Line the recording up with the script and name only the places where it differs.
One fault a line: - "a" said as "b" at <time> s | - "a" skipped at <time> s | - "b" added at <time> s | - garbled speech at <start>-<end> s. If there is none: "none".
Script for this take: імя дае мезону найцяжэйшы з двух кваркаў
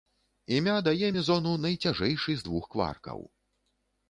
none